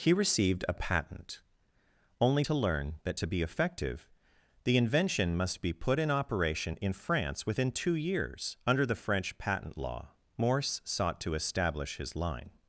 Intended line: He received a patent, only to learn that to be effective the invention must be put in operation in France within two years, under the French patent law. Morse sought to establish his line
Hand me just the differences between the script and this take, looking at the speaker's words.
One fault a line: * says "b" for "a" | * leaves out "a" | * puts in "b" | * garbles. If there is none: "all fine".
all fine